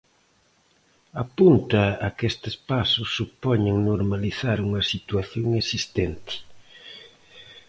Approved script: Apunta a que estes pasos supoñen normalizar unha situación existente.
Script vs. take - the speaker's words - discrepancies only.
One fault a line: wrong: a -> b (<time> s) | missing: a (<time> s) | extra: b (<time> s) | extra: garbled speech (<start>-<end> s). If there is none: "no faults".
no faults